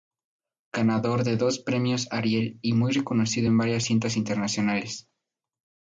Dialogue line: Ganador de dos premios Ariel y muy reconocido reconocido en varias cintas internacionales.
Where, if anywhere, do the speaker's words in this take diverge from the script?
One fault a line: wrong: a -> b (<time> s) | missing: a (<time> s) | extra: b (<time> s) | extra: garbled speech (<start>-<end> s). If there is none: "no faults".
missing: reconocido (3.5 s)